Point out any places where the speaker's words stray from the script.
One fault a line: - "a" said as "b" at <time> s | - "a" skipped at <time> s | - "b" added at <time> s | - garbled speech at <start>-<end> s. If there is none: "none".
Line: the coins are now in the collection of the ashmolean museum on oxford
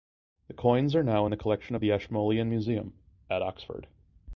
- "on" said as "at" at 3.3 s